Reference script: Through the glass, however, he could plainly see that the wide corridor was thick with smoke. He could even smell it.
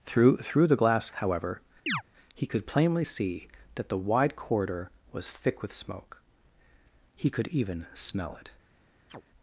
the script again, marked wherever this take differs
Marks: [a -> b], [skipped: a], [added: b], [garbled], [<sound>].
Through [added: through] the glass, however, [chirp] he could plainly see that the wide corridor was thick with smoke. He could even smell it. [chirp]